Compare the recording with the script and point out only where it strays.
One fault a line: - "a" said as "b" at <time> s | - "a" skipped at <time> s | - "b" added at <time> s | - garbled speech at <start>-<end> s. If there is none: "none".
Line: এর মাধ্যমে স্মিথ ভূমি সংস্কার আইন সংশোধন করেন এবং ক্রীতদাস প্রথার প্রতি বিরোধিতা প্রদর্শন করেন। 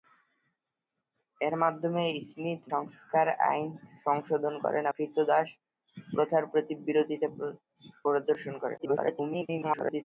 - "ভূমি" skipped at 2.6 s
- "এবং" skipped at 4.8 s
- garbled speech at 8.8-10.0 s